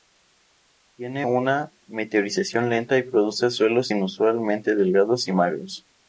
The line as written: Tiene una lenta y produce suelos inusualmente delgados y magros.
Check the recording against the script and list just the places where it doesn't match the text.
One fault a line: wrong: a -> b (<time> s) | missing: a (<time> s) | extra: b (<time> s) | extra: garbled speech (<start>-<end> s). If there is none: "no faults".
extra: meteorización (1.9 s)